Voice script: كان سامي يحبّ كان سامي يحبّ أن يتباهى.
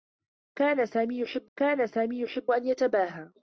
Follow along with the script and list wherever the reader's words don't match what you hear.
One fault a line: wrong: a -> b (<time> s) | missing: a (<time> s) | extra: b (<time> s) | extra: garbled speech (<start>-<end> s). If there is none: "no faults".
no faults